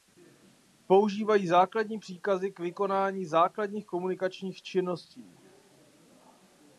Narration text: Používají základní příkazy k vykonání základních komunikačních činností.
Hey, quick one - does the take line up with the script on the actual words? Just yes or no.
yes